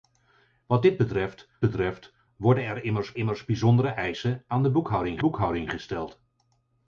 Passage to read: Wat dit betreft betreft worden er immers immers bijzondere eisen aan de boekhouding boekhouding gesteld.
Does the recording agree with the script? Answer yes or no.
yes